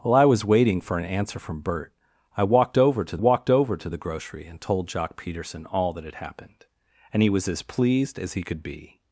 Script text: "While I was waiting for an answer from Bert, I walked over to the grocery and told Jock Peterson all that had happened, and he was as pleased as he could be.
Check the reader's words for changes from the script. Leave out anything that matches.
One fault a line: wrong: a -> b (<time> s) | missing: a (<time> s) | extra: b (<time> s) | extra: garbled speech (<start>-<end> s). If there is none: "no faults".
extra: walked over to (3.2 s)